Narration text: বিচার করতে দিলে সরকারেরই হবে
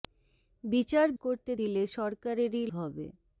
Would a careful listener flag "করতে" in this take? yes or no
no